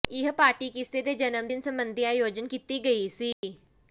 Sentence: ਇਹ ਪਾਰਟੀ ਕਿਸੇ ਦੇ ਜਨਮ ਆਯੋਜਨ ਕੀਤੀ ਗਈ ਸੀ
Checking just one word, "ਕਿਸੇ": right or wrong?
right